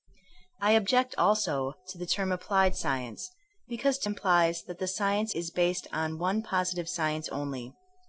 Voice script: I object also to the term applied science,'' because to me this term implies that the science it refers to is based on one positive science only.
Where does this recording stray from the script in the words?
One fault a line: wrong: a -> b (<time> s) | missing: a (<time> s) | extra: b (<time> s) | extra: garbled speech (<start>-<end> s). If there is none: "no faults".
missing: me this term (4.1 s)
missing: it refers to (5.3 s)